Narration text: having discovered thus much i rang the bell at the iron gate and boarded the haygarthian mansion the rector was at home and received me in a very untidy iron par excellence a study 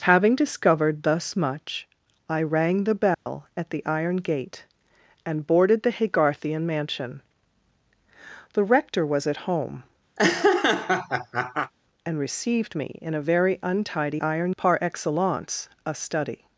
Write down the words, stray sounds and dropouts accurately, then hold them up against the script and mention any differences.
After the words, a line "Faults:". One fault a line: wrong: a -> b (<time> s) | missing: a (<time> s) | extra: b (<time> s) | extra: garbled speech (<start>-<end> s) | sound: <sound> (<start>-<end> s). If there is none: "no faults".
having discovered thus much i rang the bell at the iron gate and boarded the haygarthian mansion the rector was at home and received me in a very untidy iron par excellence a study
Faults:
sound: dropout (3.1-3.3 s)
sound: laugh (10.2-11.7 s)